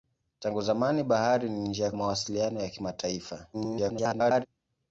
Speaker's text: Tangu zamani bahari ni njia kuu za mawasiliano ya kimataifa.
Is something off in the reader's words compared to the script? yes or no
yes